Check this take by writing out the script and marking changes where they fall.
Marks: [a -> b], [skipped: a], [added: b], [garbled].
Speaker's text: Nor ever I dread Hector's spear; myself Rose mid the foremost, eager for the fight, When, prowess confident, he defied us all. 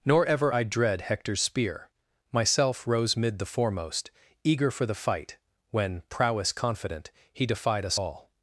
Nor ever I dread Hector's spear; myself Rose mid the foremost, eager for the fight, When, prowess confident, he defied us all.